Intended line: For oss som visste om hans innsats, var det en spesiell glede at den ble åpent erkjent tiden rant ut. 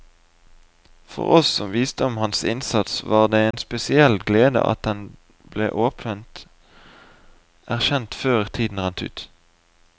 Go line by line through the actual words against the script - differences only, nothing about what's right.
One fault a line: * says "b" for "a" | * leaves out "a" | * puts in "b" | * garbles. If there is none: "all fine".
* puts in "før"